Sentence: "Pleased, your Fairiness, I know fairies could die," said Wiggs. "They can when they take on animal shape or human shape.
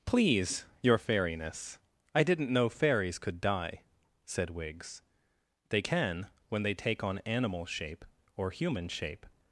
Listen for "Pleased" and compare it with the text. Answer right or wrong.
wrong